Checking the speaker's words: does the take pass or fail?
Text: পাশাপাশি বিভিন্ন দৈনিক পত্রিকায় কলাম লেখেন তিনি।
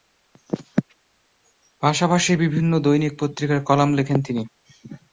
pass